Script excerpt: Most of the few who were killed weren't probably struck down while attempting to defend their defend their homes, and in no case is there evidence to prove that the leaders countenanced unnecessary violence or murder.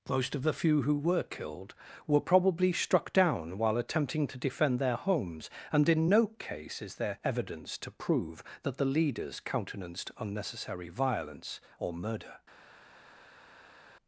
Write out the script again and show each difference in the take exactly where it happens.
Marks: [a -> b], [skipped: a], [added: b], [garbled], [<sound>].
Most of the few who were killed [weren't -> were] probably struck down while attempting to defend their [skipped: defend their] homes, and in no case is there evidence to prove that the leaders countenanced unnecessary violence or murder.